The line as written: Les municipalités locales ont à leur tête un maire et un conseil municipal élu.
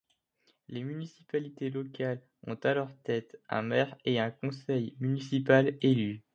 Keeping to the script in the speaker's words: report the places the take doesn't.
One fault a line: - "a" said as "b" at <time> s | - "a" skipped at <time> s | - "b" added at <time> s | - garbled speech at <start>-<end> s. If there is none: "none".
none